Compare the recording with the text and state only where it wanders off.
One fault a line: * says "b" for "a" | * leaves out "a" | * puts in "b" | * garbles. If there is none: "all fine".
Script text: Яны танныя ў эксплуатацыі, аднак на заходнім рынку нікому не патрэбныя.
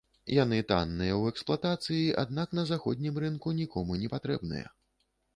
all fine